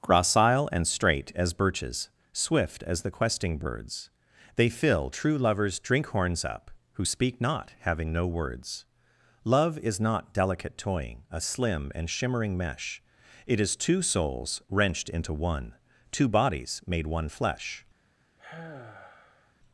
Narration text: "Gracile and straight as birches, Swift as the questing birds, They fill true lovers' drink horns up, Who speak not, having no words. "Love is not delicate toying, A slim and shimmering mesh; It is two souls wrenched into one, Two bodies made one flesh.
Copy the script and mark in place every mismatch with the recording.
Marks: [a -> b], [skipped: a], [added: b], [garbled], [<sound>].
"Gracile and straight as birches, Swift as the questing birds, They fill true lovers' drink horns up, Who speak not, having no words. "Love is not delicate toying, A slim and shimmering mesh; It is two souls wrenched into one, Two bodies made one flesh. [sigh]